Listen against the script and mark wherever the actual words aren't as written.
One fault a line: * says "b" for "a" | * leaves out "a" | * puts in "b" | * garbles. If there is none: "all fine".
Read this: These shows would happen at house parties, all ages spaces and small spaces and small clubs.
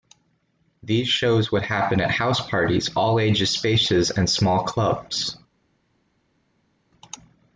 * leaves out "spaces and small"